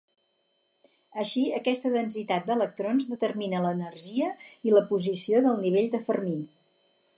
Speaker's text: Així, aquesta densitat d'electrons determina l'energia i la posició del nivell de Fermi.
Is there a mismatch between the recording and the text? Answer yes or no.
no